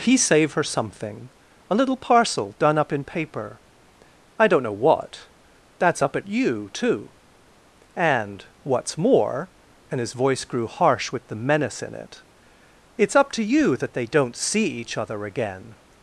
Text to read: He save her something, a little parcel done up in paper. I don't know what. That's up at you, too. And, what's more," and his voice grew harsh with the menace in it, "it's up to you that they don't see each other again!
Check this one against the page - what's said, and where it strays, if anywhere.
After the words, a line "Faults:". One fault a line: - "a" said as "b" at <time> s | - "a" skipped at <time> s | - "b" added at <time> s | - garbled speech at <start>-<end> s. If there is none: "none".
He save her something, a little parcel done up in paper. I don't know what. That's up at you, too. And, what's more," and his voice grew harsh with the menace in it, "it's up to you that they don't see each other again!
Faults:
none